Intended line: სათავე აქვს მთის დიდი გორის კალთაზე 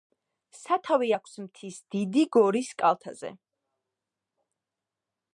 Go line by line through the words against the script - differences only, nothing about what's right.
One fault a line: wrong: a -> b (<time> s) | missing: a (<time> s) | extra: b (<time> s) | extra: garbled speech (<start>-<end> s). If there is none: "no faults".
no faults